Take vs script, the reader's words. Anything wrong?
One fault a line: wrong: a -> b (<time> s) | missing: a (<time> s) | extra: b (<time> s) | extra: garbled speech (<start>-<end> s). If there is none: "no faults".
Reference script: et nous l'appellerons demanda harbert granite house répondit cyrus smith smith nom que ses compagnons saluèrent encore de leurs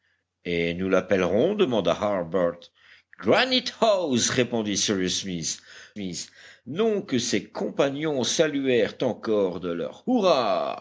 no faults